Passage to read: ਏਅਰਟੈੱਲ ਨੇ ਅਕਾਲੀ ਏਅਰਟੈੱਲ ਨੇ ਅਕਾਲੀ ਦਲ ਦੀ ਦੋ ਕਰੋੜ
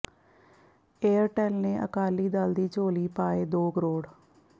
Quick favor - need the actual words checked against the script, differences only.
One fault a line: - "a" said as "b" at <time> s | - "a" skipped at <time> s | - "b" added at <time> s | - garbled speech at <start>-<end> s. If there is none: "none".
- "ਏਅਰਟੈੱਲ ਨੇ ਅਕਾਲੀ ਦਲ ਦੀ" said as "ਦਲ ਦੀ ਝੋਲੀ ਪਾਏ" at 2.3 s